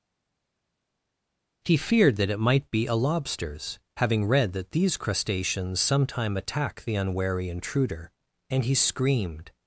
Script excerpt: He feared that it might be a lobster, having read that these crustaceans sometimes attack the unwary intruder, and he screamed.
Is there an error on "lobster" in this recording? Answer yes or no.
yes